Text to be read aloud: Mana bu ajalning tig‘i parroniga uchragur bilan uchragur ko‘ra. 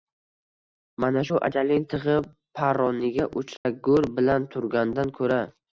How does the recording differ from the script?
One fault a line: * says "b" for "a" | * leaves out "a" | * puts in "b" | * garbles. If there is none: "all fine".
* says "shu" for "bu"
* says "turgandan" for "uchragur"